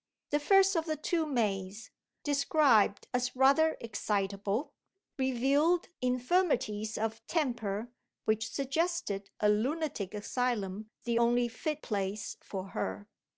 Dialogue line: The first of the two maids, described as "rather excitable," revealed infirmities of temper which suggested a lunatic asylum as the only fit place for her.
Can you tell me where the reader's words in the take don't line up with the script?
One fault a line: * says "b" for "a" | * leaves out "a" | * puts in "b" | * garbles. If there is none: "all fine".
* leaves out "as"